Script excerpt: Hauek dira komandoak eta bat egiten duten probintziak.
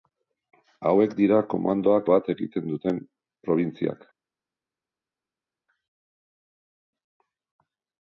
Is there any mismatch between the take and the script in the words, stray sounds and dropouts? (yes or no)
yes